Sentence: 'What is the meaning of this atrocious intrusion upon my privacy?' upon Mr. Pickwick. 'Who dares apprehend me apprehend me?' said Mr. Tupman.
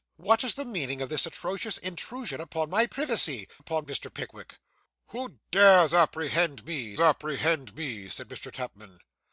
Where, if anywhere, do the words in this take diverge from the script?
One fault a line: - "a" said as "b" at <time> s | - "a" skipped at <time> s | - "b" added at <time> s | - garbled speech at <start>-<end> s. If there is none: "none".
none